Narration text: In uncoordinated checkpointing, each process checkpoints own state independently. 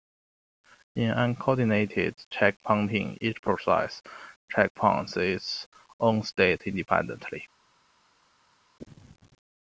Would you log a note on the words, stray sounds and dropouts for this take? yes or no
yes